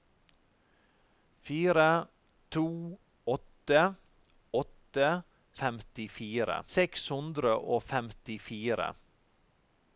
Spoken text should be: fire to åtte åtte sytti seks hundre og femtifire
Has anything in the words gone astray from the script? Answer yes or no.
yes